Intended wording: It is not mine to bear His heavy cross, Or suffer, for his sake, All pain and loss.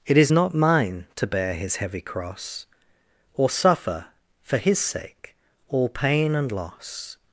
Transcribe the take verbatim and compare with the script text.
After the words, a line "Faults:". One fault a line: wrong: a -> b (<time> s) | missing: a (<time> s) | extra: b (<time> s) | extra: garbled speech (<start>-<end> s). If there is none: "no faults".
It is not mine to bear His heavy cross, Or suffer, for his sake, All pain and loss.
Faults:
no faults